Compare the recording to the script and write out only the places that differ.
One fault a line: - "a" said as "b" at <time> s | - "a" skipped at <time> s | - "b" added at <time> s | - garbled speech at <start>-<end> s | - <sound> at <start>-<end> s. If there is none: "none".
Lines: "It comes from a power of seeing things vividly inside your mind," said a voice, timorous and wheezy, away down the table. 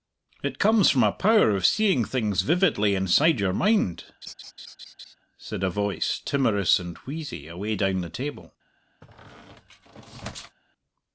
- laugh at 4.2-5.1 s
- squeak at 9.0-10.6 s